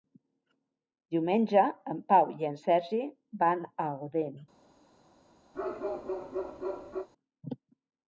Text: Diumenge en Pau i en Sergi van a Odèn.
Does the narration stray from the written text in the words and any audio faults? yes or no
yes